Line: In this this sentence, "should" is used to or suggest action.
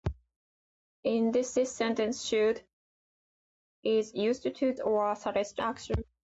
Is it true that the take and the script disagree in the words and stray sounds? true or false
false